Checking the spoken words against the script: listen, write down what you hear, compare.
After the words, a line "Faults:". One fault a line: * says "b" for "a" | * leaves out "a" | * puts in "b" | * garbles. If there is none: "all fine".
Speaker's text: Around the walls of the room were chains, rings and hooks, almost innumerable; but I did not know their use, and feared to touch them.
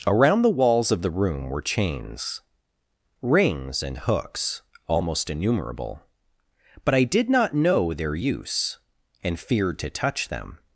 Around the walls of the room were chains, rings and hooks, almost innumerable; but I did not know their use, and feared to touch them.
Faults:
all fine